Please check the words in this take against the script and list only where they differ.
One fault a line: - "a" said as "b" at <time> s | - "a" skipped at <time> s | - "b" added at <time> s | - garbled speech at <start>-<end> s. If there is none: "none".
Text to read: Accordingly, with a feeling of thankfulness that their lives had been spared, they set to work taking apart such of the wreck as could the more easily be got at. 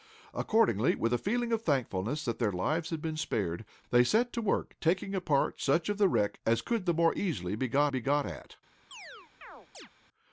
- "be got" added at 7.9 s